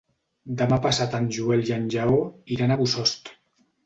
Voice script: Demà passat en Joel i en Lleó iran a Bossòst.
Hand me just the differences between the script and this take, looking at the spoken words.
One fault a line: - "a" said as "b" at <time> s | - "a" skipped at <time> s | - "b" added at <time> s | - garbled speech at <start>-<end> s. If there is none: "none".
none